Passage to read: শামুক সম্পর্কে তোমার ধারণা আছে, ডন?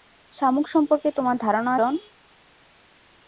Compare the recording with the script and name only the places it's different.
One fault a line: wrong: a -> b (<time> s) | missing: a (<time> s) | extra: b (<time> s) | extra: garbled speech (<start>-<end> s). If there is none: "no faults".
missing: আছে (1.7 s)